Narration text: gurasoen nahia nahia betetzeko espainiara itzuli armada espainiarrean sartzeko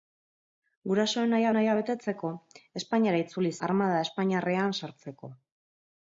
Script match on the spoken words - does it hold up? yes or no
yes